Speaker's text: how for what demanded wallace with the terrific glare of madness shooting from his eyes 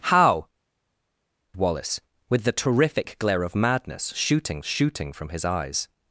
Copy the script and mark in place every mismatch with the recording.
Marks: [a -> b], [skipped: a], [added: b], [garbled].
how [skipped: for what demanded] wallace with the terrific glare of madness shooting [added: shooting] from his eyes